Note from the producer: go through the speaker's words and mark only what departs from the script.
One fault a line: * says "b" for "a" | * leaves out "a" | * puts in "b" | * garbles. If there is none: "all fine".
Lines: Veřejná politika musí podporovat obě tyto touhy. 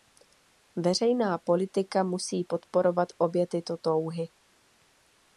all fine